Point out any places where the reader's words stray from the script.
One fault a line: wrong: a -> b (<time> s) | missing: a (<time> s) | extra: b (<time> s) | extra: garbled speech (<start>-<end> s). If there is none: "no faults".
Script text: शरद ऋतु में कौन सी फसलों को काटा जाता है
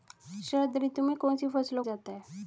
missing: को काटा (1.8 s)